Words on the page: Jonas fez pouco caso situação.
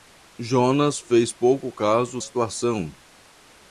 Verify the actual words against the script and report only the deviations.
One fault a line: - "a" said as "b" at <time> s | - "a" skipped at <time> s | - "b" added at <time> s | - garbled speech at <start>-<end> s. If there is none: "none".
none